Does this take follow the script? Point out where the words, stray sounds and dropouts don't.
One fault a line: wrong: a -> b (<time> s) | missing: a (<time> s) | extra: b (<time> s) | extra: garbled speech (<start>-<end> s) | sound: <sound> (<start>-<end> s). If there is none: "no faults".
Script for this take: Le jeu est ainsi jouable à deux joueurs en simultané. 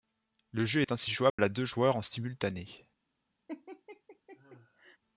sound: dropout (1.3-1.4 s)
sound: laugh (3.5-5.0 s)